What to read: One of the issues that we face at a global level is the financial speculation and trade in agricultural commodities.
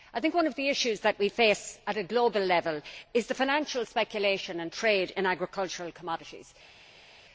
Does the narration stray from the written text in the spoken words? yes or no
no